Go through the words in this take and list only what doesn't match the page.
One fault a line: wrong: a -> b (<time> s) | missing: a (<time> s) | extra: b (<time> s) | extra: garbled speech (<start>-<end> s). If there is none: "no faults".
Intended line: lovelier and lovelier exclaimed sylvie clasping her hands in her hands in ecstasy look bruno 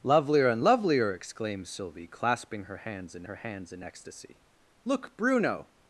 no faults